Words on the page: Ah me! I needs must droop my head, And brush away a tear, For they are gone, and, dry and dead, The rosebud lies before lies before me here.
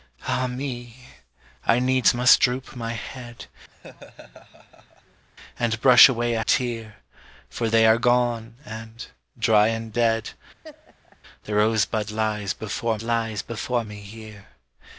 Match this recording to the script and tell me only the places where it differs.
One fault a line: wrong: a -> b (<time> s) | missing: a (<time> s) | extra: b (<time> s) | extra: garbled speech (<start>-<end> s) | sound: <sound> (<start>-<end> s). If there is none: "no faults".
sound: laugh (3.7-5.2 s)
sound: laugh (10.6-11.2 s)